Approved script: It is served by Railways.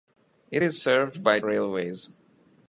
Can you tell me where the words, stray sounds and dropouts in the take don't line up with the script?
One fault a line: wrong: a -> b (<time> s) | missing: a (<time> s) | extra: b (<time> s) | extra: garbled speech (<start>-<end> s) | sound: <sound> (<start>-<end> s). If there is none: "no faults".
no faults